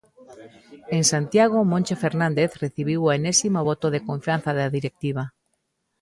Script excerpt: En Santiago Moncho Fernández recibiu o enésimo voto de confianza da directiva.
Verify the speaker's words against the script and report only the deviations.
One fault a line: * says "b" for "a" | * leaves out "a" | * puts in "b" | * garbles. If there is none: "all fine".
all fine